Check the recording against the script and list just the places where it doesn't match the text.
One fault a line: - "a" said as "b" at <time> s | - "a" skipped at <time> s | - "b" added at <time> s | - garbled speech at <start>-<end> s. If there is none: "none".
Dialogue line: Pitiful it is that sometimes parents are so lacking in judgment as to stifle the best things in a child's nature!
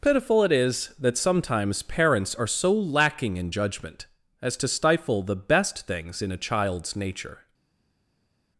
none